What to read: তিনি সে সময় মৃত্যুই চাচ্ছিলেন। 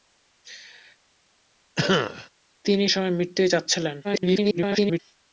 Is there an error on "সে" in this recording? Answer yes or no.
yes